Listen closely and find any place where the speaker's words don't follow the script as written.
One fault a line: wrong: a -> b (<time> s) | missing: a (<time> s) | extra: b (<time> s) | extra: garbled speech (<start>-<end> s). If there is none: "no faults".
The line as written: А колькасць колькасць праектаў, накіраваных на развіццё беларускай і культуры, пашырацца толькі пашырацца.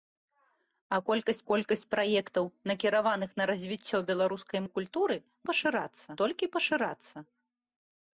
no faults